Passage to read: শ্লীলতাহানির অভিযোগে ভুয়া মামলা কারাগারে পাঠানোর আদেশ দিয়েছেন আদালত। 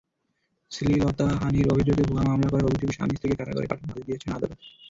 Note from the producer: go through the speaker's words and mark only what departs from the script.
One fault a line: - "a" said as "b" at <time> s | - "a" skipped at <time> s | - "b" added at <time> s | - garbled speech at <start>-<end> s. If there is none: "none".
- "করার অভিযোগে স্বামী-স্ত্রীকে" added at 2.5 s